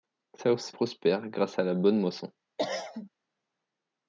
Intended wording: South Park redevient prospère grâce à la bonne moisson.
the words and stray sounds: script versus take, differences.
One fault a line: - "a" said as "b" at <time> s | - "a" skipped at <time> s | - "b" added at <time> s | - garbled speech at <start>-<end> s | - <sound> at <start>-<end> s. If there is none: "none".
- "Park redevient" skipped at 0.7 s
- cough at 2.6-3.1 s